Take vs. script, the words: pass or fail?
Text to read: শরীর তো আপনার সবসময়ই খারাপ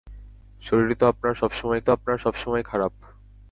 fail